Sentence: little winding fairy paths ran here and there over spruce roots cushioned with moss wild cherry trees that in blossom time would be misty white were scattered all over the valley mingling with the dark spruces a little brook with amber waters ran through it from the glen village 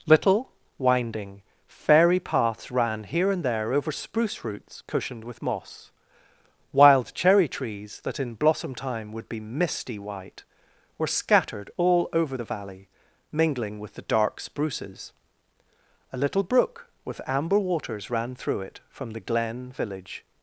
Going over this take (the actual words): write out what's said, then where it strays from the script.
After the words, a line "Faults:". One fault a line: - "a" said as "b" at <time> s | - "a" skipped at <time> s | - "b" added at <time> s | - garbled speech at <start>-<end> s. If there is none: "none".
little winding fairy paths ran here and there over spruce roots cushioned with moss wild cherry trees that in blossom time would be misty white were scattered all over the valley mingling with the dark spruces a little brook with amber waters ran through it from the glen village
Faults:
none